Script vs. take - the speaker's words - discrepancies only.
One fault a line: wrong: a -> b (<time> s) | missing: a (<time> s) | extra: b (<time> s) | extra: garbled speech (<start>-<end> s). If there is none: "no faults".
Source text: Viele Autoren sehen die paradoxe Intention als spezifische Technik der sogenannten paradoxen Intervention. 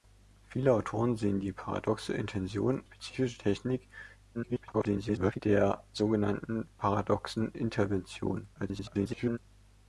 missing: als (2.8 s)
extra: garbled speech (4.3-5.4 s)
extra: garbled speech (8.5-9.4 s)